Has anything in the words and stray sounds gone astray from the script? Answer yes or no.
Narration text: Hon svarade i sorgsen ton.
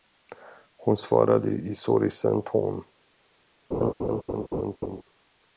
yes